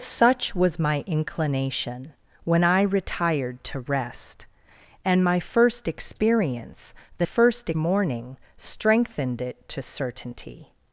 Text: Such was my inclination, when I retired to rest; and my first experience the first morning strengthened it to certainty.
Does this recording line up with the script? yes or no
yes